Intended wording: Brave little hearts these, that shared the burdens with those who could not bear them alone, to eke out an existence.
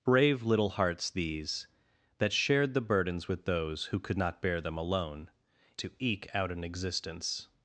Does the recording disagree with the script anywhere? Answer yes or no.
no